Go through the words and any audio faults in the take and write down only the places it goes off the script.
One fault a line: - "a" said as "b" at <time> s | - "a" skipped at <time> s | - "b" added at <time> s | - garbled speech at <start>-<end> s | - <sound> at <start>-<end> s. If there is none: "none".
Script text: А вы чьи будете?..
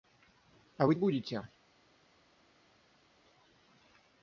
- "чьи" skipped at 1.0 s